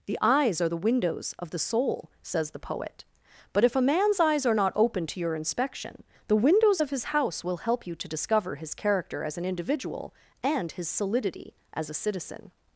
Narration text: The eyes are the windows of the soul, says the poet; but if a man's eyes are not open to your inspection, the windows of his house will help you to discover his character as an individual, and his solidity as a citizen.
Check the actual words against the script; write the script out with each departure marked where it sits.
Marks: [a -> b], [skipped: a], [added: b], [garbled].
The eyes are the windows of the soul, says the poet; but if a man's eyes are not open to your inspection, the windows of his house will help you to discover his character as an individual, and his solidity as a citizen.